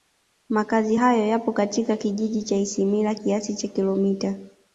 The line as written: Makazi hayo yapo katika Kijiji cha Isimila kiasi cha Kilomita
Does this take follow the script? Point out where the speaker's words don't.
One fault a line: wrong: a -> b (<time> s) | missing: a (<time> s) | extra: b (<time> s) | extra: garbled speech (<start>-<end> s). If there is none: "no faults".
no faults